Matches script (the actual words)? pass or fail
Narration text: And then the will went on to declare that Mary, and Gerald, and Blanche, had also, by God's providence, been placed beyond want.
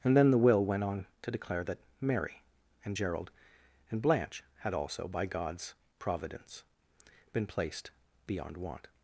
pass